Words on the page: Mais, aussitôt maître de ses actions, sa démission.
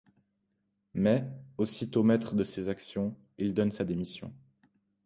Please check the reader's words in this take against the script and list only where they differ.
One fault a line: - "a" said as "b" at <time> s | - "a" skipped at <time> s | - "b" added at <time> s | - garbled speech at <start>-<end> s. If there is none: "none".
- "il donne" added at 3.4 s